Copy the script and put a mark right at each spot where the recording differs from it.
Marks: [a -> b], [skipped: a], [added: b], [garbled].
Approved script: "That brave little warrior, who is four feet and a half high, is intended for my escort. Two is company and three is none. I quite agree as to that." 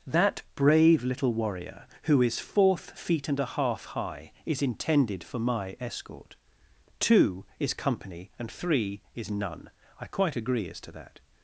"That brave little warrior, who is [four -> fourth] feet and a half high, is intended for my escort. Two is company and three is none. I quite agree as to that."